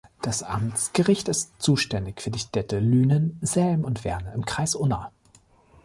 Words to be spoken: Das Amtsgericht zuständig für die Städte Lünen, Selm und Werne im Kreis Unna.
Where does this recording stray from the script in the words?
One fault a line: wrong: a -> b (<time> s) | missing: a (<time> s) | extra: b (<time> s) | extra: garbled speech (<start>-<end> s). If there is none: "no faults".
extra: ist (1.3 s)